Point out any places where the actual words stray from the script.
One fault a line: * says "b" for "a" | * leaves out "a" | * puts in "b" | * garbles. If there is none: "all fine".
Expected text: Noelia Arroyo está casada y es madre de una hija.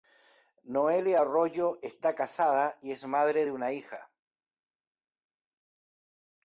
all fine